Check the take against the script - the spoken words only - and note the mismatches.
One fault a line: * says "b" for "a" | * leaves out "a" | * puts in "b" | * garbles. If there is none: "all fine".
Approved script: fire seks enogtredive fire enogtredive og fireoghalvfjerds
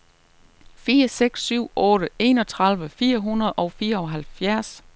* puts in "syv otte"
* says "hundrede" for "enogtredive"